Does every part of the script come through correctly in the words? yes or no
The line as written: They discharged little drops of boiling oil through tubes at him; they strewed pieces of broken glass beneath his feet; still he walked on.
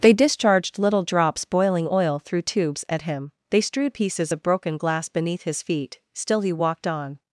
no